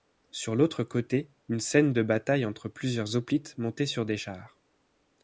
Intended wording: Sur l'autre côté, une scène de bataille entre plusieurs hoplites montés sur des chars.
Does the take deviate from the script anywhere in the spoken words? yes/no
no